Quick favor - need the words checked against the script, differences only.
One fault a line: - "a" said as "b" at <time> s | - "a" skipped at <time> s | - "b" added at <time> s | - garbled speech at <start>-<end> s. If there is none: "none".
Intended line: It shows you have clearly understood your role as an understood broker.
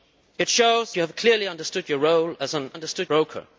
none